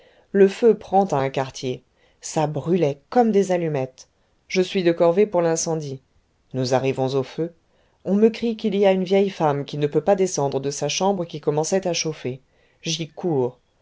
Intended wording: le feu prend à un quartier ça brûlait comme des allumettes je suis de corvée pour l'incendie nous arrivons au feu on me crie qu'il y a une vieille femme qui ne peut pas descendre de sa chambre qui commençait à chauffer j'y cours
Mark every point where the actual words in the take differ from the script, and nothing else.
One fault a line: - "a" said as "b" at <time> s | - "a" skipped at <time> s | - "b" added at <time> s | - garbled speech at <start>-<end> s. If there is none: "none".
none